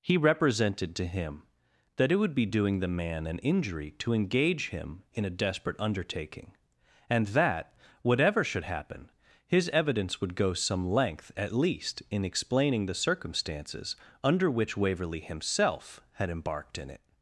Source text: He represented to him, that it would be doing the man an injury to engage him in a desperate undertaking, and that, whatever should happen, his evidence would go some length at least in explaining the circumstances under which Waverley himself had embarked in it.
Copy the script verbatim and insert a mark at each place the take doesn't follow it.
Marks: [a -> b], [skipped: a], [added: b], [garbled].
He represented to him, that it would be doing the man an injury to engage him in a desperate undertaking, and that, whatever should happen, his evidence would go some length at least in explaining the circumstances under which Waverley himself had embarked in it.